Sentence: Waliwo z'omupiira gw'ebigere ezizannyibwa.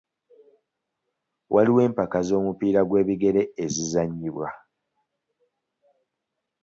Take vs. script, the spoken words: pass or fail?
fail